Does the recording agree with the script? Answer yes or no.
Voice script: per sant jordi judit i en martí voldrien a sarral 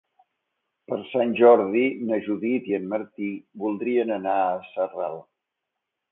no